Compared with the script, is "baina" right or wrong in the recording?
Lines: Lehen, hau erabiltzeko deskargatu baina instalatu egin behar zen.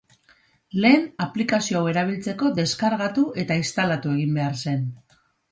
wrong